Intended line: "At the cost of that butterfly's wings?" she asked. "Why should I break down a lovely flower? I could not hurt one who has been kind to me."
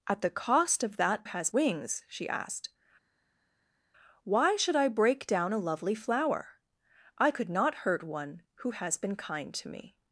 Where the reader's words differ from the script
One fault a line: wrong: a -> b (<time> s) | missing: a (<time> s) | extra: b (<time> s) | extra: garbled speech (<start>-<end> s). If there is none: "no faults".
wrong: butterfly's -> has (1.2 s)